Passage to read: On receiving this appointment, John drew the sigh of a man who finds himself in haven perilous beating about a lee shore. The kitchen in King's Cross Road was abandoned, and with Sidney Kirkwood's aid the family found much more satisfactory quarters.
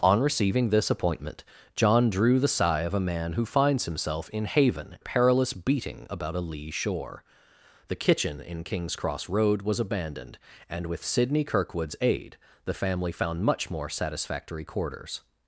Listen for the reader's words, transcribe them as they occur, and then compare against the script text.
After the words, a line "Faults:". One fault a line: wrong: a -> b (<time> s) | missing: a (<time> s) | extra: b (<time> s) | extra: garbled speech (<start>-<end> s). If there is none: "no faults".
On receiving this appointment, John drew the sigh of a man who finds himself in haven perilous beating about a lee shore. The kitchen in King's Cross Road was abandoned, and with Sidney Kirkwood's aid the family found much more satisfactory quarters.
Faults:
no faults